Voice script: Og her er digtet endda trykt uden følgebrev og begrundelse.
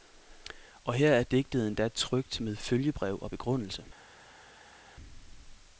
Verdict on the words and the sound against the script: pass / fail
fail